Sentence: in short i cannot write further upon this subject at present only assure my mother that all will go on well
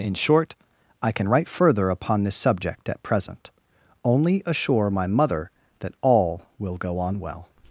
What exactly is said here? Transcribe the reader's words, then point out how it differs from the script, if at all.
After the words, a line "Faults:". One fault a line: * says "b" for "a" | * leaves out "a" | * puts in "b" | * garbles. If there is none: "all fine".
in short i can write further upon this subject at present only assure my mother that all will go on well
Faults:
* says "can" for "cannot"